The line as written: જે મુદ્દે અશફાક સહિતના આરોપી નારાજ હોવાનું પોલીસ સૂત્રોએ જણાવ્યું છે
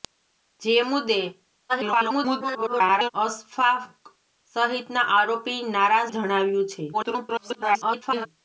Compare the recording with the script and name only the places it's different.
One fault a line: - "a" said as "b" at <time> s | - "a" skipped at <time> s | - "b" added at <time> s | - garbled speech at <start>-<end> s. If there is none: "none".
- garbled speech at 1.7-3.1 s
- "હોવાનું પોલીસ સૂત્રોએ" skipped at 6.1 s
- garbled speech at 6.9-8.3 s